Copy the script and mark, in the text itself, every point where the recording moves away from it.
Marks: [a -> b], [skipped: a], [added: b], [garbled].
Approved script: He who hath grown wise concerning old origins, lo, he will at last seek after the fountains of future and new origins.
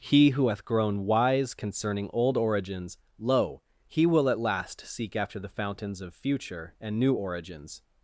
He who hath grown wise concerning old origins, lo, he will at last seek after the fountains of future and new origins.